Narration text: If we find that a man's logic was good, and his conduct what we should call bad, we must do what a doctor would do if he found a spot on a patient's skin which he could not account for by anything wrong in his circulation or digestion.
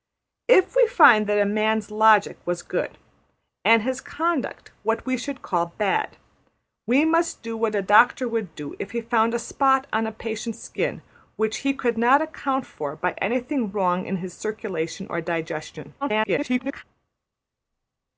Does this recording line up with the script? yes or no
no